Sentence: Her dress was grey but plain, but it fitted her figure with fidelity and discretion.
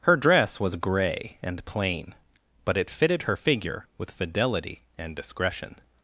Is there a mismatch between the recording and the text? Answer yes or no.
yes